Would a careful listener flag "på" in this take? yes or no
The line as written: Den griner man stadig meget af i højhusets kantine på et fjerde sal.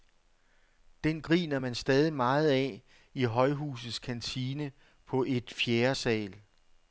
no